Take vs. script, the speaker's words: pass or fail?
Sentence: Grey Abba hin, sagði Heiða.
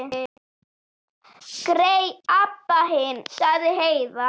pass